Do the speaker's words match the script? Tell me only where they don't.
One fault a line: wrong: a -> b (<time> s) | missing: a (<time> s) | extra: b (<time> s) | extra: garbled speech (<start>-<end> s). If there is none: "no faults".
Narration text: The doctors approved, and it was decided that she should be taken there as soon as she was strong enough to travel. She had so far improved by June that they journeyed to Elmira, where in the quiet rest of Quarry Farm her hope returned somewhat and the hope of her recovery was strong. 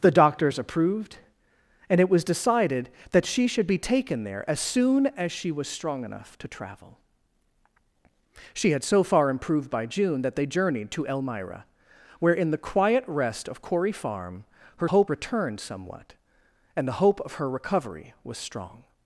no faults